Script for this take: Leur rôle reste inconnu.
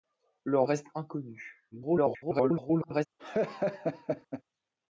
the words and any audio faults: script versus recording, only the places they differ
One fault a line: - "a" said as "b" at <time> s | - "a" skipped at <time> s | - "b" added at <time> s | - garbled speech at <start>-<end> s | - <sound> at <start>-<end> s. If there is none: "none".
- "rôle" skipped at 0.6 s
- garbled speech at 1.7-3.1 s
- laugh at 3.2-4.4 s